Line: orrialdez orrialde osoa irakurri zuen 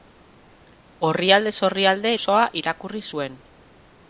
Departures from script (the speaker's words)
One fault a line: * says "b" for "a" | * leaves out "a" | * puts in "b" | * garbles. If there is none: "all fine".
all fine